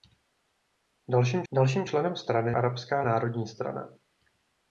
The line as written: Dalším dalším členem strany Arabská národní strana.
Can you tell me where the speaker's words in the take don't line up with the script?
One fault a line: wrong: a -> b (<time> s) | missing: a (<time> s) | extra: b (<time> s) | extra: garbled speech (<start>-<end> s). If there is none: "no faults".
no faults